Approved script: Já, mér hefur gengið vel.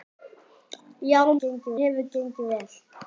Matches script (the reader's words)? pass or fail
fail